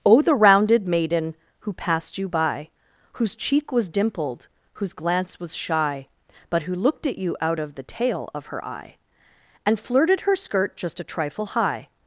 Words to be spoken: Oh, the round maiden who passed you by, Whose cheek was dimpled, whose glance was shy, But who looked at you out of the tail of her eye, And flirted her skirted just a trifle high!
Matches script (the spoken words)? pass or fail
fail